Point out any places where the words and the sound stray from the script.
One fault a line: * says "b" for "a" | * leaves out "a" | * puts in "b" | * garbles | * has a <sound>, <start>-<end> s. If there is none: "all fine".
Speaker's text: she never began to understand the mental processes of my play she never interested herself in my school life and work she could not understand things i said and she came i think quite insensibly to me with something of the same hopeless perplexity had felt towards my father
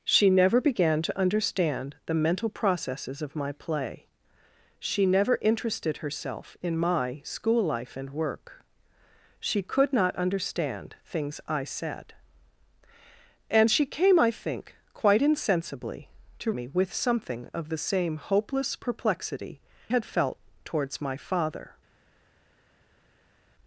all fine